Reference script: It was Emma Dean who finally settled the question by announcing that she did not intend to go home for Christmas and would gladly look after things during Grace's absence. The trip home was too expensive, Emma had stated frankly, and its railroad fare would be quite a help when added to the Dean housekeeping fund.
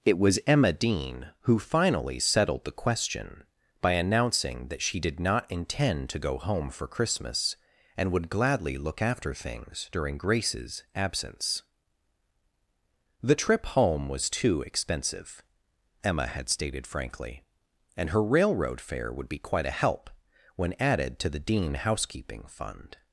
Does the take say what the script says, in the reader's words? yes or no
no